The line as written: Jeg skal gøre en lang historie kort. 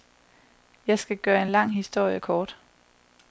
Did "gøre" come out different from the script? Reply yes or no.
no